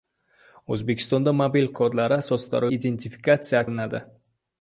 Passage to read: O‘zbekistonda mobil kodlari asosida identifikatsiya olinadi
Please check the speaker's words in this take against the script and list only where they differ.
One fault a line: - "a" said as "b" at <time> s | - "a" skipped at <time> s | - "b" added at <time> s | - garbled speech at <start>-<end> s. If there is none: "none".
none